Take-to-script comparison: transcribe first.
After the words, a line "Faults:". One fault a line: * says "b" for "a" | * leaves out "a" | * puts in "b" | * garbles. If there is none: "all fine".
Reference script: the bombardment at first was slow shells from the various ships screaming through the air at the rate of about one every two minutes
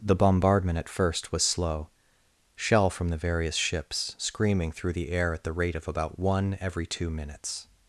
the bombardment at first was slow shell from the various ships screaming through the air at the rate of about one every two minutes
Faults:
* says "shell" for "shells"